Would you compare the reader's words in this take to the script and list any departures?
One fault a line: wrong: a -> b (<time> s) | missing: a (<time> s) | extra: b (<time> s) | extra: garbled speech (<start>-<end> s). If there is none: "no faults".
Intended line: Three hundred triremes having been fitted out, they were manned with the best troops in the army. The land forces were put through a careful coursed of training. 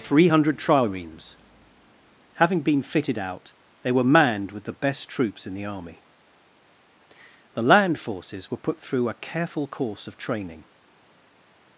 wrong: coursed -> course (9.7 s)